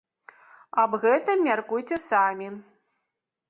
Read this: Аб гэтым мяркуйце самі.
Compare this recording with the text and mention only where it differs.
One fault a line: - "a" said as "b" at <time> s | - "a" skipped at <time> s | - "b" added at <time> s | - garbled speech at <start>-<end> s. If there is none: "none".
none